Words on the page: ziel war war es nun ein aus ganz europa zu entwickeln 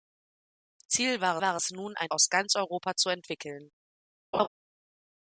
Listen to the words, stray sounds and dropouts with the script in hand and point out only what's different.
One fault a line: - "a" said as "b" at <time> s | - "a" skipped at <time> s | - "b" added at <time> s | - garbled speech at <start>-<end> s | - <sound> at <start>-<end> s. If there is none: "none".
- laugh at 4.3-4.5 s